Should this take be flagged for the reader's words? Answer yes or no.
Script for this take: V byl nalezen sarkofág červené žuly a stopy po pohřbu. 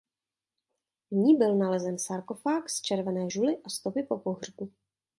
yes